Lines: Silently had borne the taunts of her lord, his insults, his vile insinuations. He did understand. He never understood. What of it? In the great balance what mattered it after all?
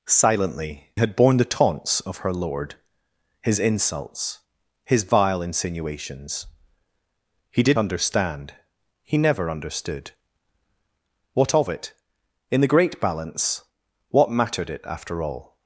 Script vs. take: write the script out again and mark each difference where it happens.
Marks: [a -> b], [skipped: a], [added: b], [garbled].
Silently had borne the taunts of her lord, his insults, his vile insinuations. He did understand. He never understood. What of it? In the great balance what mattered it after all?